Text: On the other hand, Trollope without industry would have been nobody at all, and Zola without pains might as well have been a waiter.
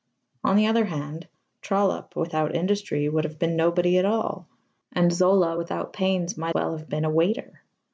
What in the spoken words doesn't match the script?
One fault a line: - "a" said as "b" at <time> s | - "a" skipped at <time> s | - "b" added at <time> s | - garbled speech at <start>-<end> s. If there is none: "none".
- "as" skipped at 6.6 s